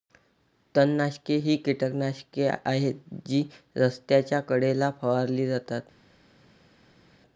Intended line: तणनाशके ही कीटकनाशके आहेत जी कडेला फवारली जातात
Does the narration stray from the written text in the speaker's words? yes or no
yes